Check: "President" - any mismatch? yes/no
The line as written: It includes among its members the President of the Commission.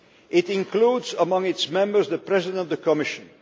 no